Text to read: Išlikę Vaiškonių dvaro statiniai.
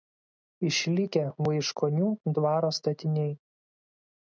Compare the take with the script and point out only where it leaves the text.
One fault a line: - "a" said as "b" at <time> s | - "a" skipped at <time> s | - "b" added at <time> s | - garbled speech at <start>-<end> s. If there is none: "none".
none